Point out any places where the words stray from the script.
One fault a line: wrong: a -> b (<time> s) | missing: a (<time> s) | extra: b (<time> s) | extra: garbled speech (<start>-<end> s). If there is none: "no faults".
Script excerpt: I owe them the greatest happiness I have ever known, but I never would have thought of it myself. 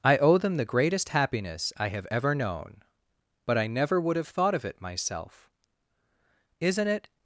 extra: Isn't it (6.6 s)